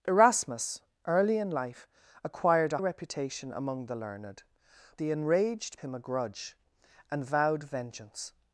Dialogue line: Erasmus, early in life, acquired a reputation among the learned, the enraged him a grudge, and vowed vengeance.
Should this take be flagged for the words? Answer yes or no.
no